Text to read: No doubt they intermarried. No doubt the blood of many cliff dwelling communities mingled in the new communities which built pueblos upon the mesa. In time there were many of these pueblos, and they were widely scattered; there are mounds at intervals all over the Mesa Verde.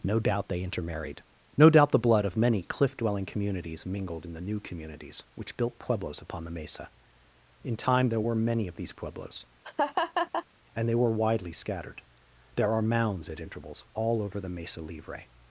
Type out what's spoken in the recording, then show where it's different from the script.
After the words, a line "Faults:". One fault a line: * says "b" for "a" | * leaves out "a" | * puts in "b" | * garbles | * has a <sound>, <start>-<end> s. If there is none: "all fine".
No doubt they intermarried. No doubt the blood of many cliff dwelling communities mingled in the new communities which built pueblos upon the mesa. In time there were many of these pueblos, and they were widely scattered; there are mounds at intervals all over the Mesa Livre.
Faults:
* has a laugh, 9.6-10.5 s
* says "Livre" for "Verde"